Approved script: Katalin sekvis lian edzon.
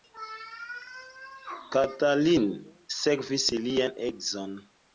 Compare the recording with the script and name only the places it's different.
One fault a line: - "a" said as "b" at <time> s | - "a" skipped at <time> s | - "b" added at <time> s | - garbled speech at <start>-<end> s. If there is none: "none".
none